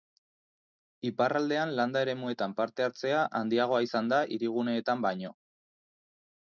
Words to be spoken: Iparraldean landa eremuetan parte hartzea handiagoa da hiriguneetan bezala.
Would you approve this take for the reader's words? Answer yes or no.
no